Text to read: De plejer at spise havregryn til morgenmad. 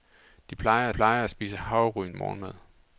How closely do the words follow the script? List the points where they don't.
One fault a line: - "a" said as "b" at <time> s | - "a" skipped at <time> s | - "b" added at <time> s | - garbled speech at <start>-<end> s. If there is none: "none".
- "plejer" added at 0.9 s
- "til" skipped at 2.1 s